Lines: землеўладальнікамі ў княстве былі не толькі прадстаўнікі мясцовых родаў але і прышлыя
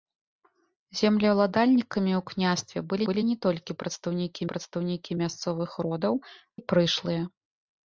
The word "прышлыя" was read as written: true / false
true